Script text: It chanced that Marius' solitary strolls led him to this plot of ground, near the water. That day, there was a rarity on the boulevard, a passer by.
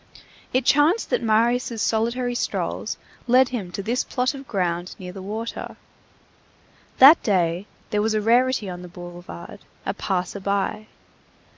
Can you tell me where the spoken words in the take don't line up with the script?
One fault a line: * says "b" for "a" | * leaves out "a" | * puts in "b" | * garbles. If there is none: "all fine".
all fine